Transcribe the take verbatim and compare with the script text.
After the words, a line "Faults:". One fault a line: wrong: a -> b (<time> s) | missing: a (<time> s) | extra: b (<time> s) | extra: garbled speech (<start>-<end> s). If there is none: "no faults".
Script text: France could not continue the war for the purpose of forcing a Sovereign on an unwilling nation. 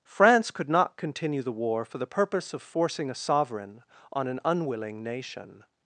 France could not continue the war for the purpose of forcing a Sovereign on an unwilling nation.
Faults:
no faults